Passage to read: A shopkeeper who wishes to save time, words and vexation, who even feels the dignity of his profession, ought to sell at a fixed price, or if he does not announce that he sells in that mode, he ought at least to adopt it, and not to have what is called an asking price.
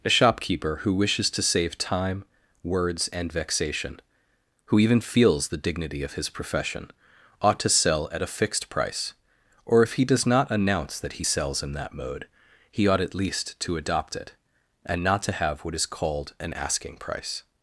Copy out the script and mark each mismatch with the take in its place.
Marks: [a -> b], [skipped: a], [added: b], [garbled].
A shopkeeper who wishes to save time, words and vexation, who even feels the dignity of his profession, ought to sell at a fixed price, or if he does not announce that he sells in that mode, he ought at least to adopt it, and not to have what is called an asking price.